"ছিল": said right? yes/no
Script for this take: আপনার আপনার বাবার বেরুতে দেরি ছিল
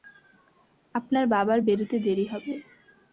no